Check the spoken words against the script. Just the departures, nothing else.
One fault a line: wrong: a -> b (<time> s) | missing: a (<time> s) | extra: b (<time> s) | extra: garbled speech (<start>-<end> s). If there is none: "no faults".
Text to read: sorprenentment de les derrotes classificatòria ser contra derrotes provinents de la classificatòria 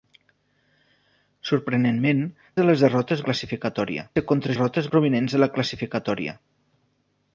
no faults